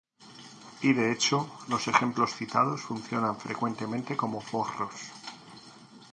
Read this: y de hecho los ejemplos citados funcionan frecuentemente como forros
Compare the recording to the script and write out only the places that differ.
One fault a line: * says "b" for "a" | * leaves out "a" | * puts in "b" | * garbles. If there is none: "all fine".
all fine